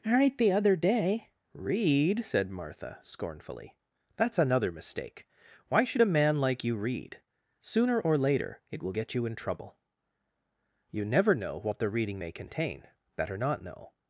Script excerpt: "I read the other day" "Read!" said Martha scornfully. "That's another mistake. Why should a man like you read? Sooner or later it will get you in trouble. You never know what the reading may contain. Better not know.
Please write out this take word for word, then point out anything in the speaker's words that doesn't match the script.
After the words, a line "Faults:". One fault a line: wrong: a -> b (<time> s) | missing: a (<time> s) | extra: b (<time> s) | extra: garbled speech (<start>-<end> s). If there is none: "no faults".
"right the other day" "Read!" said Martha scornfully. "That's another mistake. Why should a man like you read? Sooner or later it will get you in trouble. You never know what the reading may contain. Better not know.
Faults:
wrong: I read -> right (0.1 s)